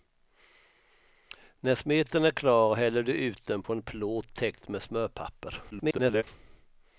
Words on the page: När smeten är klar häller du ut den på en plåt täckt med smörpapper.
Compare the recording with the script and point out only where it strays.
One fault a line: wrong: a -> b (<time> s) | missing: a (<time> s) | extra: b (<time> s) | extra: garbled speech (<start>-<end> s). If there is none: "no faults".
extra: garbled speech (5.7-6.2 s)